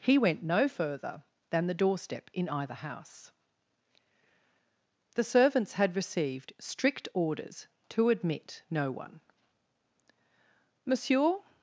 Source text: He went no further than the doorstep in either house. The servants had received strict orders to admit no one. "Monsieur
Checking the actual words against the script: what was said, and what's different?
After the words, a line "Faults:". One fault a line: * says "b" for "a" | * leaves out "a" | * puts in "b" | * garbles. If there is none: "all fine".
He went no further than the doorstep in either house. The servants had received strict orders to admit no one. "Monsieur
Faults:
all fine